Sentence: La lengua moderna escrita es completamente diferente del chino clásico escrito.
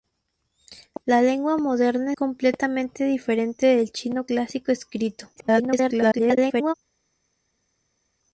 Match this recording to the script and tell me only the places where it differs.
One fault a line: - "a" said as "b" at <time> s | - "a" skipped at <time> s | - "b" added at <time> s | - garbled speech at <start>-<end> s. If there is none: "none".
- "escrita es" skipped at 2.1 s
- garbled speech at 5.4-6.7 s